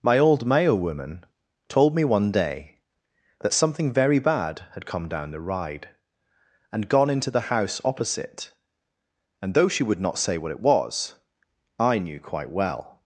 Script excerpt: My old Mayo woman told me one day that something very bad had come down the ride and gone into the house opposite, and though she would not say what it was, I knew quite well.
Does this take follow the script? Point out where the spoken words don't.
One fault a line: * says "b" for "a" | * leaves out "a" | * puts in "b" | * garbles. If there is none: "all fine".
all fine